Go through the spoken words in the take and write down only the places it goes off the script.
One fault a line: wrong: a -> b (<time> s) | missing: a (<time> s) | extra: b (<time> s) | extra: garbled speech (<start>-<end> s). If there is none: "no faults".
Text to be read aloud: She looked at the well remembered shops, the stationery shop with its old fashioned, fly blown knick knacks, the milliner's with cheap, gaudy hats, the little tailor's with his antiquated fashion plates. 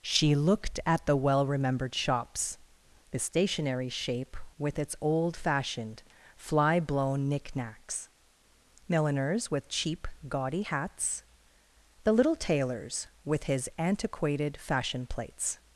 wrong: shop -> shape (3.9 s)
missing: the (8.1 s)